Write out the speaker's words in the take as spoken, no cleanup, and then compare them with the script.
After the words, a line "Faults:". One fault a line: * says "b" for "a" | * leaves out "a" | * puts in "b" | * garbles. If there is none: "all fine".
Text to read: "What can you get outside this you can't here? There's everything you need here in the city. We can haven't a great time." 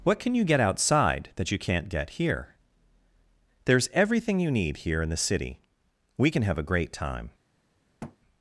"What can you get outside that you can't get here? There's everything you need here in the city. We can have a great time."
Faults:
* says "that" for "this"
* puts in "get"
* says "have" for "haven't"